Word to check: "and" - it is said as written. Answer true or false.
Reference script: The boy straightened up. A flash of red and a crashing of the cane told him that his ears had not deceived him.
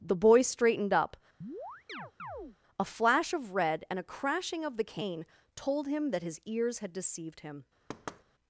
true